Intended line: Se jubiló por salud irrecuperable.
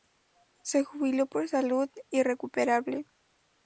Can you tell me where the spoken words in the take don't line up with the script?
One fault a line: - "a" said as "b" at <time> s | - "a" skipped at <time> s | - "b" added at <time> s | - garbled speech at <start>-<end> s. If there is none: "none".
none